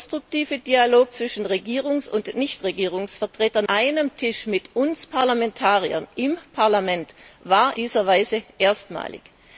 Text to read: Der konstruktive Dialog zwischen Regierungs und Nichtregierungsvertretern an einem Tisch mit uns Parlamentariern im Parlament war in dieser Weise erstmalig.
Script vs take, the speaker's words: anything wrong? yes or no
yes